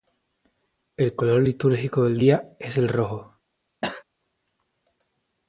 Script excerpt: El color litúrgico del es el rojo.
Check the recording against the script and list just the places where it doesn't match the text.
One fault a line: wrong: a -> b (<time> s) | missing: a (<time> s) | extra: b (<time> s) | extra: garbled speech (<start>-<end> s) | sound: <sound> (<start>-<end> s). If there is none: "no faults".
extra: día (2.2 s)
sound: cough (3.8-4.0 s)